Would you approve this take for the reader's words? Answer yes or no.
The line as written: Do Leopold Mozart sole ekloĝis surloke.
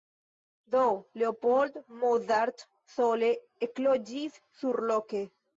yes